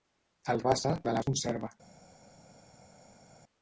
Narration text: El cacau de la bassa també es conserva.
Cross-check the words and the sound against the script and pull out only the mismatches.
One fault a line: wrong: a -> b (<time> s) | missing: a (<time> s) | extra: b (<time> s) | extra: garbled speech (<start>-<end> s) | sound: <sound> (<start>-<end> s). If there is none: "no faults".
wrong: cacau -> bassa (0.7 s)
missing: bassa també (1.2 s)